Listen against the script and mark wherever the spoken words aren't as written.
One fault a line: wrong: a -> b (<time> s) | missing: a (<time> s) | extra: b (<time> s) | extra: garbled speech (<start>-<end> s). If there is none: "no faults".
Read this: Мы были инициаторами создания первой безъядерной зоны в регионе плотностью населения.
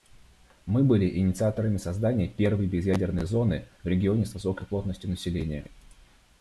extra: с высокой (4.3 s)